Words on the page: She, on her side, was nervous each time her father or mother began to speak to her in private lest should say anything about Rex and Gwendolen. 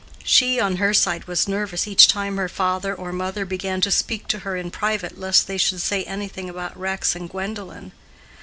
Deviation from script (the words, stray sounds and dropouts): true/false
true